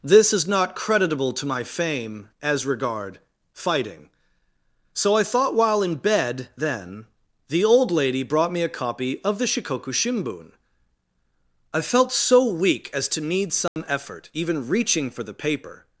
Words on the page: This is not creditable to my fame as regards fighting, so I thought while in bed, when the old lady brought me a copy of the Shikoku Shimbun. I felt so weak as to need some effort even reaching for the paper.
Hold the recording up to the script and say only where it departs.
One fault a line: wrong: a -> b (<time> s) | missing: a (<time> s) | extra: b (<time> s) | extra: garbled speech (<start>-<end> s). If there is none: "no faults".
wrong: regards -> regard (2.6 s)
wrong: when -> then (6.6 s)